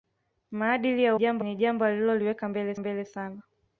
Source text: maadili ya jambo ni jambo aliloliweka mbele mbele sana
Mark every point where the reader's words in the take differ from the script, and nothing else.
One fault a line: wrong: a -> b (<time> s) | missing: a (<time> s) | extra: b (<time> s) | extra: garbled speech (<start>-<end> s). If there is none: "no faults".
no faults